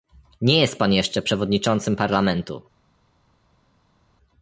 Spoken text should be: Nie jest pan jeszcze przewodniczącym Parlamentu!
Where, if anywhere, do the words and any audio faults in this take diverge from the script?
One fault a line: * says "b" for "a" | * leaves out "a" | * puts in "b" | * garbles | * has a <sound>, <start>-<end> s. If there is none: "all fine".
all fine